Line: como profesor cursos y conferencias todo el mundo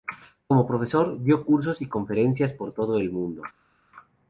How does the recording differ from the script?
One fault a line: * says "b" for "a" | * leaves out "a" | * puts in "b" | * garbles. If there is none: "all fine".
* puts in "dio"
* puts in "por"